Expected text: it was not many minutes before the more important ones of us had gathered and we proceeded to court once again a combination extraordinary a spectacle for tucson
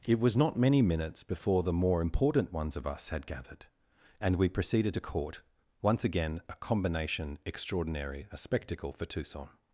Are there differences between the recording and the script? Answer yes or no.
no